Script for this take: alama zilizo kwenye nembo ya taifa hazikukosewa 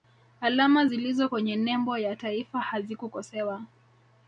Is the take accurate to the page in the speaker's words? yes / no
yes